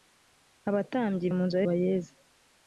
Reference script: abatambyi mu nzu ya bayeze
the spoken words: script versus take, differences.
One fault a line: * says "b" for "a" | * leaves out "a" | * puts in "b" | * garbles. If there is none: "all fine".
all fine